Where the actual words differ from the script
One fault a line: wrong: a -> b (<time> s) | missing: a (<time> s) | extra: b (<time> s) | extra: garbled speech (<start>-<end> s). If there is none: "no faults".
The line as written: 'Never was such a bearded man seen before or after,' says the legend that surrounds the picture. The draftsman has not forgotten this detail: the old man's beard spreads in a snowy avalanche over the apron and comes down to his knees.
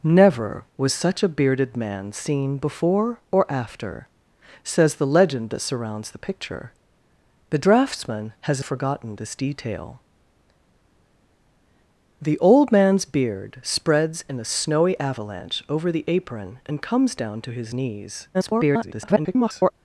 missing: not (8.6 s)
extra: garbled speech (18.3-19.7 s)